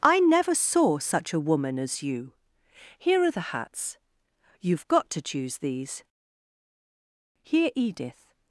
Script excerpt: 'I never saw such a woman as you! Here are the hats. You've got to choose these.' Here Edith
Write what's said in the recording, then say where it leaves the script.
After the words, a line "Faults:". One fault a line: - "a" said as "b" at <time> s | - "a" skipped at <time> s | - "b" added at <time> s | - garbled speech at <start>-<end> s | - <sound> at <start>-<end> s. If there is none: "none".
'I never saw such a woman as you! Here are the hats. You've got to choose these.' Here Edith
Faults:
none